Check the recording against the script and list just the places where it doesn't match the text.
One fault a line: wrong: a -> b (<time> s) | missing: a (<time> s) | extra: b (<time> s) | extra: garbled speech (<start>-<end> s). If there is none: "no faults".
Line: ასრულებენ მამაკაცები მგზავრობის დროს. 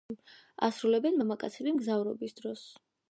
no faults